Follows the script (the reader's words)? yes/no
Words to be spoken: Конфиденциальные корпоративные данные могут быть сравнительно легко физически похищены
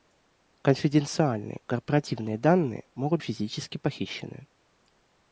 no